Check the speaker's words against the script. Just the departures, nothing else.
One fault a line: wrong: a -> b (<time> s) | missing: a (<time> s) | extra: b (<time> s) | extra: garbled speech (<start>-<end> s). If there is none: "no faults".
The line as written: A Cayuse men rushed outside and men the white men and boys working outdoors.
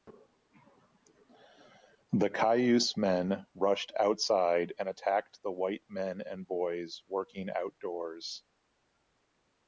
wrong: A -> The (2.1 s)
wrong: men -> attacked (4.9 s)